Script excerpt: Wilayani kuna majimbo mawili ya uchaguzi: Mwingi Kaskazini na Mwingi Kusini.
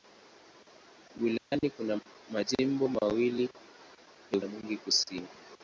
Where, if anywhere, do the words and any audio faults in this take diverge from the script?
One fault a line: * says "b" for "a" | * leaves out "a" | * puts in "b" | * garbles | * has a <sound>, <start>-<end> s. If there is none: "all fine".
* has a dropout, 1.4-1.5 s
* leaves out "uchaguzi Mwingi Kaskazini"